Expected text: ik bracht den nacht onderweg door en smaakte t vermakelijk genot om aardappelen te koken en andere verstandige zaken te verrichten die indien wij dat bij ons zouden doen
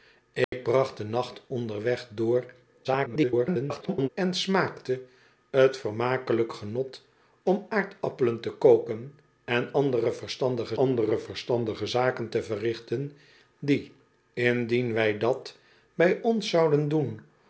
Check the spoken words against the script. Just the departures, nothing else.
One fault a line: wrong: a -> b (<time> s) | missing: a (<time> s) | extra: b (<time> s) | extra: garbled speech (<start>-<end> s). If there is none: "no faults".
extra: garbled speech (2.8-4.1 s)
extra: andere verstandige (10.7 s)